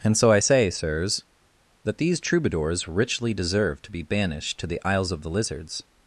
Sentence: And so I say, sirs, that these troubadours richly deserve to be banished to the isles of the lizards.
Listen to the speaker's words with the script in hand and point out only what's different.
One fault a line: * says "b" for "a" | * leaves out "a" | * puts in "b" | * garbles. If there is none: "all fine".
all fine